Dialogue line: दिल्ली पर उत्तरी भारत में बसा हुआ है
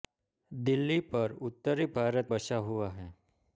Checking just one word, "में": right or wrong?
wrong